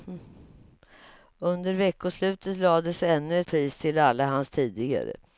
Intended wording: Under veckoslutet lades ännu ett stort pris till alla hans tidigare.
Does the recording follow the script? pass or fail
fail